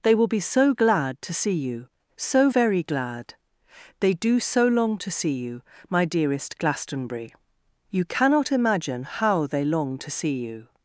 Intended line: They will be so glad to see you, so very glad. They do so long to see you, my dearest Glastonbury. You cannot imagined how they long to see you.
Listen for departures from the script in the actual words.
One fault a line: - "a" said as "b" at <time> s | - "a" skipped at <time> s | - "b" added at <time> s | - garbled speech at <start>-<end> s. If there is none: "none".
- "imagined" said as "imagine" at 8.5 s